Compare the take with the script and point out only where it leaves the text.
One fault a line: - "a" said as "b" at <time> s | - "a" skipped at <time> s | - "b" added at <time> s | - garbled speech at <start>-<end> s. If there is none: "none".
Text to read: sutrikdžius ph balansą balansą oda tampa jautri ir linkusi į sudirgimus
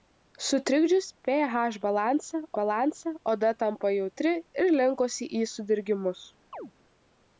none